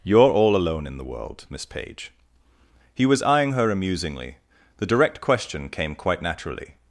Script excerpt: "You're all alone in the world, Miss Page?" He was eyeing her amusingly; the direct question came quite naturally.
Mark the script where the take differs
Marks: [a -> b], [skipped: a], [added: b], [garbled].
"You're all alone in the world, Miss Page?" He was eyeing her amusingly; the direct question came quite naturally.